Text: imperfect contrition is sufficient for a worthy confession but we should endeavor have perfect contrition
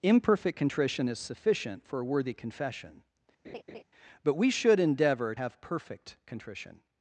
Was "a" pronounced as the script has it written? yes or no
yes